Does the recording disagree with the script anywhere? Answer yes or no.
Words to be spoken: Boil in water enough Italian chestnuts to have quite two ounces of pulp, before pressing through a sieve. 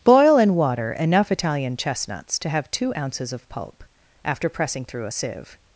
yes